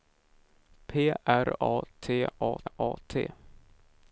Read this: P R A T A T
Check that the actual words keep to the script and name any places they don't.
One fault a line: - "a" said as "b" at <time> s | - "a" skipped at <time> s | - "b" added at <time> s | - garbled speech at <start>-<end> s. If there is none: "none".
- "A" added at 2.6 s